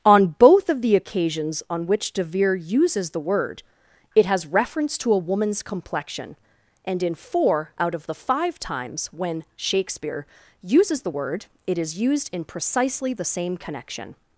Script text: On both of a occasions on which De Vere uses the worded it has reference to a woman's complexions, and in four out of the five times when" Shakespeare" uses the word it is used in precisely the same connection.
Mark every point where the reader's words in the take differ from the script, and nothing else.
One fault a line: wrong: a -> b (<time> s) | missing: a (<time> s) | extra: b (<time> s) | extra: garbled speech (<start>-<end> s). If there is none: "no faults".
wrong: a -> the (0.8 s)
wrong: worded -> word (3.2 s)
wrong: complexions -> complexion (5.6 s)